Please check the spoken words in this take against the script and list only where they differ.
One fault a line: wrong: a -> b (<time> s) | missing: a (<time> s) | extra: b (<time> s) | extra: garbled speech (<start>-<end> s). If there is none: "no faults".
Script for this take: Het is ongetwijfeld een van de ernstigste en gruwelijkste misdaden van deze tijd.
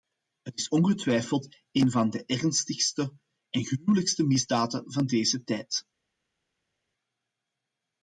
no faults